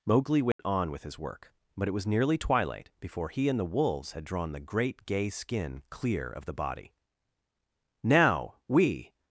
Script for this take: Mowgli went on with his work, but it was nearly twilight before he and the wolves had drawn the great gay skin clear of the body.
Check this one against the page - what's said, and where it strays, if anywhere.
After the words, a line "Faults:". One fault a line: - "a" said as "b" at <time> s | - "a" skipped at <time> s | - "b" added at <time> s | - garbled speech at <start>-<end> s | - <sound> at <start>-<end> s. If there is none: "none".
Mowgli went on with his work, but it was nearly twilight before he and the wolves had drawn the great gay skin clear of the body. "Now we
Faults:
- dropout at 0.5-0.6 s
- "Now we" added at 8.0 s